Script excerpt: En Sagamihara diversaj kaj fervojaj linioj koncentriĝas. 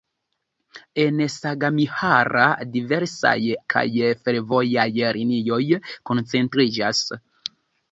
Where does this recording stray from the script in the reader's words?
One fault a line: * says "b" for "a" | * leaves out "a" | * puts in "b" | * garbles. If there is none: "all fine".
all fine